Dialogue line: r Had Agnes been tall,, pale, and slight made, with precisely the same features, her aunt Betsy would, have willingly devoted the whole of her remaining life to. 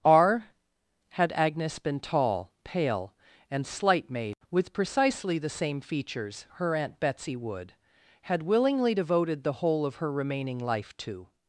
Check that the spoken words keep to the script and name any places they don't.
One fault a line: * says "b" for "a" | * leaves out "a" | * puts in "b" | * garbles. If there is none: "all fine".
* says "had" for "have"